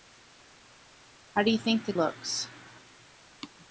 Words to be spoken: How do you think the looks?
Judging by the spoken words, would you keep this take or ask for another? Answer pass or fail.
pass